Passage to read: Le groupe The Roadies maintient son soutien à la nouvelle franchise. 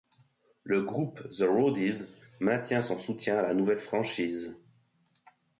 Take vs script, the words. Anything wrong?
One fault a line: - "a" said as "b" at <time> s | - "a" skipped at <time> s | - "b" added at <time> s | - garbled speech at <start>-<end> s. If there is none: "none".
none